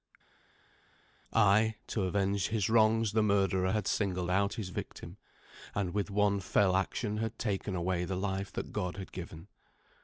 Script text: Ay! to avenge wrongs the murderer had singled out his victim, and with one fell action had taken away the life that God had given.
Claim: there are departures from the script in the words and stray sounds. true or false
true